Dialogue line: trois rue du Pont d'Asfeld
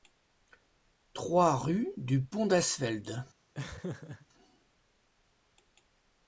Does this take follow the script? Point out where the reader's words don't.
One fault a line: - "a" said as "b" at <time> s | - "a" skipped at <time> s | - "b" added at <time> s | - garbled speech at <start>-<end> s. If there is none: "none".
none